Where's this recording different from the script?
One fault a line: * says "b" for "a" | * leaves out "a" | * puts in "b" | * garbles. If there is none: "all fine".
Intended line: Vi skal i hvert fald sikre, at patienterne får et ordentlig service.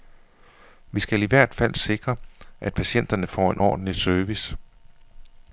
* says "en" for "et"